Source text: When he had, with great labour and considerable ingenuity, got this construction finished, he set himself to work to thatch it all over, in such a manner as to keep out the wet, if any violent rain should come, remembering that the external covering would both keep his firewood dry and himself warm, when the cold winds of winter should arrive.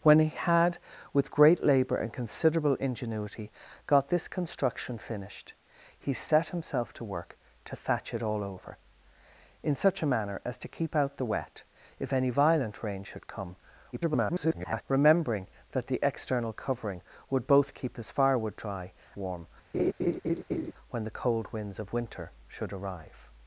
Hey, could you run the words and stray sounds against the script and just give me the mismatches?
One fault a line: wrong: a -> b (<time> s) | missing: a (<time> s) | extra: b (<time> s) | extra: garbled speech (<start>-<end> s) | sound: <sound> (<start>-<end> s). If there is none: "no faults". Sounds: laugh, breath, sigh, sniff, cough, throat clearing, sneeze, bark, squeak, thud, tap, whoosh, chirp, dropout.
extra: garbled speech (13.9-14.8 s)
missing: and himself (18.9 s)
sound: laugh (19.7-20.7 s)